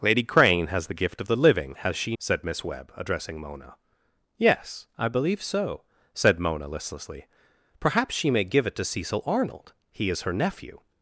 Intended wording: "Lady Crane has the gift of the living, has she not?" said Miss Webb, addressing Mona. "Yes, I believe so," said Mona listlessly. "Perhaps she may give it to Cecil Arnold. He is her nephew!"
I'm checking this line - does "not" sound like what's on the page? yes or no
no